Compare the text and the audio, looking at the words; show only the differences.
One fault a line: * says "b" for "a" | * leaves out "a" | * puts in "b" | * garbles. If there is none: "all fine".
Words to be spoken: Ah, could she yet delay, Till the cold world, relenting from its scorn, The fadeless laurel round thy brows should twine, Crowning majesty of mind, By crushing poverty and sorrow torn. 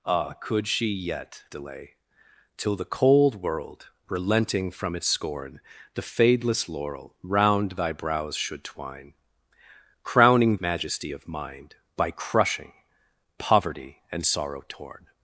all fine